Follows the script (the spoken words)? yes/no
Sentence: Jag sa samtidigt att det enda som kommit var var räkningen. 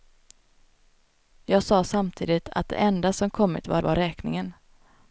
yes